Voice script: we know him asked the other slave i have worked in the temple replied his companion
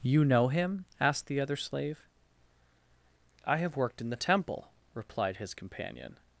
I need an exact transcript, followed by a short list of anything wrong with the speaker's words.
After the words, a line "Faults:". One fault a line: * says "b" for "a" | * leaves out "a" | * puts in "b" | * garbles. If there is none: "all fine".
you know him asked the other slave i have worked in the temple replied his companion
Faults:
* says "you" for "we"